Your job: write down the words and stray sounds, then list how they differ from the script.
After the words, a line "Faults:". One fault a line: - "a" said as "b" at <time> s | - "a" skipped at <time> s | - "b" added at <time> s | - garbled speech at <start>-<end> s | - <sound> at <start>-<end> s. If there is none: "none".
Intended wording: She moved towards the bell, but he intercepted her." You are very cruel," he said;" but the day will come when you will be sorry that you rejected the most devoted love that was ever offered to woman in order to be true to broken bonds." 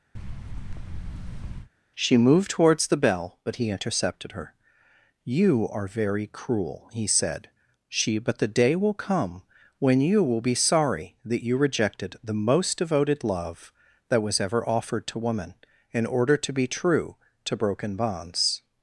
She moved towards the bell, but he intercepted her." You are very cruel," he said;" she but the day will come when you will be sorry that you rejected the most devoted love that was ever offered to woman in order to be true to broken bonds."
Faults:
- thud at 0.1-1.7 s
- "she" added at 7.9 s